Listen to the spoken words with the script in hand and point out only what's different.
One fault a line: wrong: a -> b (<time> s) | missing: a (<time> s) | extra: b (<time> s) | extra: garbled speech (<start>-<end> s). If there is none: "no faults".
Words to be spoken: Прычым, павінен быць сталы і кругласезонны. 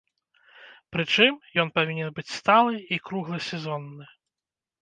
extra: ён (1.6 s)